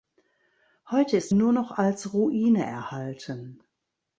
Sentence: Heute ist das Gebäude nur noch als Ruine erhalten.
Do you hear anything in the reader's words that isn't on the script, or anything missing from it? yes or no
yes